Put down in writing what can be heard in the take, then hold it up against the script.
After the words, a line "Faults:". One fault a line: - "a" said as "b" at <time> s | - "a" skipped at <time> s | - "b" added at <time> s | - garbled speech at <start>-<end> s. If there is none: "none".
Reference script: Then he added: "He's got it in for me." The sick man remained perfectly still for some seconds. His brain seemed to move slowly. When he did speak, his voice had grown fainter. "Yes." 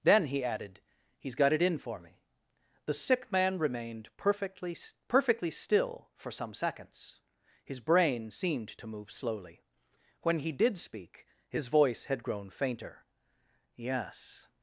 Then he added: "He's got it in for me." The sick man remained perfectly perfectly still for some seconds. His brain seemed to move slowly. When he did speak, his voice had grown fainter. "Yes."
Faults:
- "perfectly" added at 5.1 s